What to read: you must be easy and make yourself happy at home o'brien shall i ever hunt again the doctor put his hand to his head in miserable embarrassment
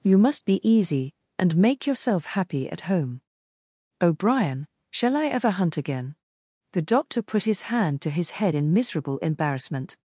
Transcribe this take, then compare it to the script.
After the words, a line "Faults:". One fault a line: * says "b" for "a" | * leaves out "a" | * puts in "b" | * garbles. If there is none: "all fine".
you must be easy and make yourself happy at home o'brien shall i ever hunt again the doctor put his hand to his head in miserable embarrassment
Faults:
all fine